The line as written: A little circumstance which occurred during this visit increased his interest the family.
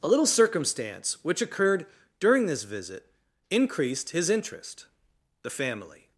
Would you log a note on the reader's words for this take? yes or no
no